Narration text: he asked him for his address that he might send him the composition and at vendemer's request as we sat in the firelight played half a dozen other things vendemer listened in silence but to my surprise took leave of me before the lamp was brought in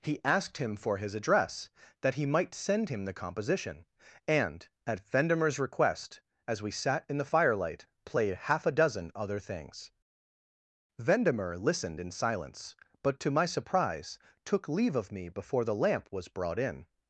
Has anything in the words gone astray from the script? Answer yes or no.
no